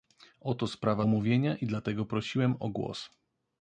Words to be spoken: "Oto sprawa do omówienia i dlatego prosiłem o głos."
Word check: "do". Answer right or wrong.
wrong